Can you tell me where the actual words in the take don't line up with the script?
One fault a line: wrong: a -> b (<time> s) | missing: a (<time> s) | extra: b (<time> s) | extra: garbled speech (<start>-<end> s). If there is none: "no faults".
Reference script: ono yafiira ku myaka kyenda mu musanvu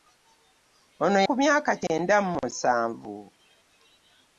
missing: yafiira (1.2 s)